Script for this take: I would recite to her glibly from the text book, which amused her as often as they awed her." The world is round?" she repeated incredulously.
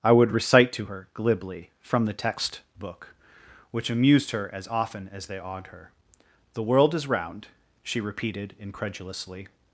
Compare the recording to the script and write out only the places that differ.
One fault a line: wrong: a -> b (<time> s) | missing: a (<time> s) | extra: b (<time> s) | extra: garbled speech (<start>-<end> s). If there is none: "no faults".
no faults